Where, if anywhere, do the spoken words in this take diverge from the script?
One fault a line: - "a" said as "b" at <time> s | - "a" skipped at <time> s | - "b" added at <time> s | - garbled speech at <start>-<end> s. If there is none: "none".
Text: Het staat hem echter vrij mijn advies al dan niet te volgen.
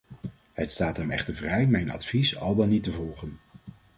none